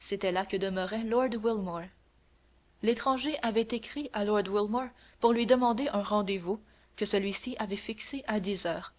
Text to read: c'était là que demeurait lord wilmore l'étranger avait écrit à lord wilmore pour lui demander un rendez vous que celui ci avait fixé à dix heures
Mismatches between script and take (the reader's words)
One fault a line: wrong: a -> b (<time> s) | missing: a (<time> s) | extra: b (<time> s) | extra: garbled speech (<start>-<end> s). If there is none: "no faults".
no faults